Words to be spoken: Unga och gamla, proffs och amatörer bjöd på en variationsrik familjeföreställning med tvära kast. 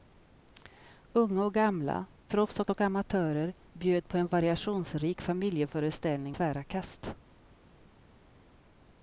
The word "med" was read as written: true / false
false